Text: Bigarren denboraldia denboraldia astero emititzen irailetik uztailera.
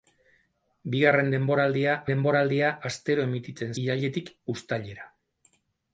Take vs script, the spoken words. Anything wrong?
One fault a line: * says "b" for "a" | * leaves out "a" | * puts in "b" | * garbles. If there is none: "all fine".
all fine